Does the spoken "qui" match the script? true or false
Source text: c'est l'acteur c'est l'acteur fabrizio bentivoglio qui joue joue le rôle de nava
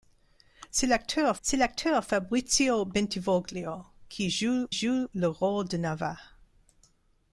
true